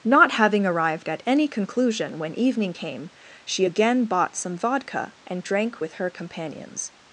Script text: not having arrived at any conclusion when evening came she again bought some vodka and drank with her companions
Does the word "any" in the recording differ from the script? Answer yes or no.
no